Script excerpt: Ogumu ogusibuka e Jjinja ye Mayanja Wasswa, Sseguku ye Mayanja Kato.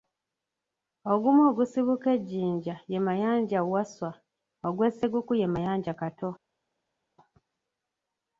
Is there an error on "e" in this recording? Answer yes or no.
no